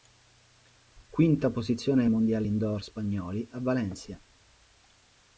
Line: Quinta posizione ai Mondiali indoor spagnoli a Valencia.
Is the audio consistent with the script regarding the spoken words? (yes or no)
yes